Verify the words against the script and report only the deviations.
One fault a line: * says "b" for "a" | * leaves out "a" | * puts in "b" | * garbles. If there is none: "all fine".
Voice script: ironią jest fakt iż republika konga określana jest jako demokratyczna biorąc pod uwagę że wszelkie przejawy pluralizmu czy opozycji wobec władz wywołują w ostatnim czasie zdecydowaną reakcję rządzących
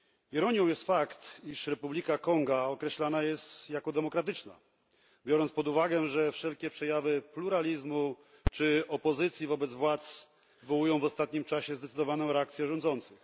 all fine